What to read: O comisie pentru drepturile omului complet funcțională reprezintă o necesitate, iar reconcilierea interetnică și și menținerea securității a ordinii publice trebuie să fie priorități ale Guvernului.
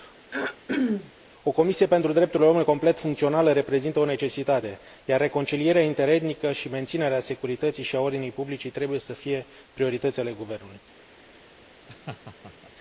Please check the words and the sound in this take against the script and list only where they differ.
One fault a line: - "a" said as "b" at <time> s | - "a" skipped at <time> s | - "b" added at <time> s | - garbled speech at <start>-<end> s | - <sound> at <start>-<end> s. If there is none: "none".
- throat clearing at 0.3-1.1 s
- "și" skipped at 6.7 s
- "și" added at 7.8 s
- laugh at 11.9-12.7 s